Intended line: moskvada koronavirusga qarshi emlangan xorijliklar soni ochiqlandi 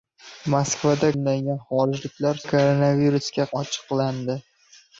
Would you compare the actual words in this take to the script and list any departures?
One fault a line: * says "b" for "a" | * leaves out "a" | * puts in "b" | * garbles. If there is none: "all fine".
* leaves out "koronavirusga qarshi"
* says "koronavirusga" for "soni"